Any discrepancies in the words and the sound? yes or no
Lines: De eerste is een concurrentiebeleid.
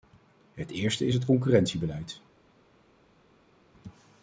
yes